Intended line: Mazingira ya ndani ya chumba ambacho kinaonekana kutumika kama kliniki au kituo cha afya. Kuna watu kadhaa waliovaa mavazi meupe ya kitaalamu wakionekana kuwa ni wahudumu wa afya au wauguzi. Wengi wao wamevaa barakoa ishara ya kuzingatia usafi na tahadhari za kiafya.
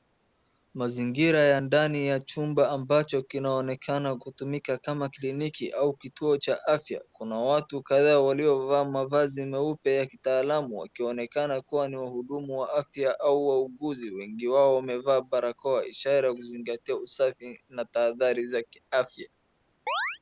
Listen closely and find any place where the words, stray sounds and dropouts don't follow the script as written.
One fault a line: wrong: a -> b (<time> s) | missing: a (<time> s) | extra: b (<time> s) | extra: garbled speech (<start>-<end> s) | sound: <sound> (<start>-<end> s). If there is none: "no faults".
sound: chirp (19.9-20.2 s)